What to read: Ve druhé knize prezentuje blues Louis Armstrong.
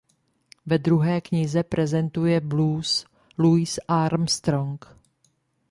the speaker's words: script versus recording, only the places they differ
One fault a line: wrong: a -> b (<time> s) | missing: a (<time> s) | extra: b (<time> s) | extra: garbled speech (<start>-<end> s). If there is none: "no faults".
no faults